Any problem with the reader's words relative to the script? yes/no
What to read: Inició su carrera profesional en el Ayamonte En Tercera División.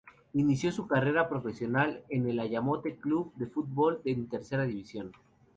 yes